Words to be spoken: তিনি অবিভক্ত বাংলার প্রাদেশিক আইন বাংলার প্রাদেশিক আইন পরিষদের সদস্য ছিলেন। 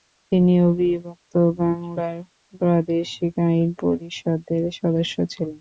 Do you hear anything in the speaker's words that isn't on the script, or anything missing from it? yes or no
yes